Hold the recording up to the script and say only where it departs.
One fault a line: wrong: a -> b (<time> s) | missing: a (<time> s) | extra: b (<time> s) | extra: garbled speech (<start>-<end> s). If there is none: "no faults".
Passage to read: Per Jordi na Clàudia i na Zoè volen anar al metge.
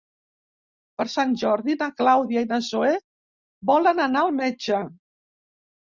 extra: Sant (1.1 s)